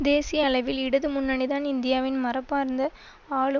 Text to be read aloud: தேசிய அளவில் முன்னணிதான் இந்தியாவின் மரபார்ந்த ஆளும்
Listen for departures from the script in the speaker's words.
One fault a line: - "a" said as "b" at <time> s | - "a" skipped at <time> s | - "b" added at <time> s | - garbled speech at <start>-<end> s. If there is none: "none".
- "இடது" added at 0.8 s